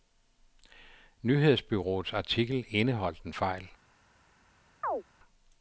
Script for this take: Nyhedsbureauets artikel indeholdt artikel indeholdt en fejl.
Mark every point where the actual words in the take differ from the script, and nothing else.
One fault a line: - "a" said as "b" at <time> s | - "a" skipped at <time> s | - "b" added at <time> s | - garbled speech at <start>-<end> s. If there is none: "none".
- "artikel indeholdt" skipped at 3.2 s